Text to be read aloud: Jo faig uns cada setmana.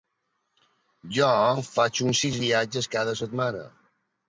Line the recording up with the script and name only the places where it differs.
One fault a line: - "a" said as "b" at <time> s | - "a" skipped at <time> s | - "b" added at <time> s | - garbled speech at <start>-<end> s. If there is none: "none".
- "sis viatges" added at 2.2 s